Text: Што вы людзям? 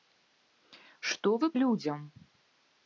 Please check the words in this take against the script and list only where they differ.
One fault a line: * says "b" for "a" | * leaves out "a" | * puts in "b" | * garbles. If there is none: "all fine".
all fine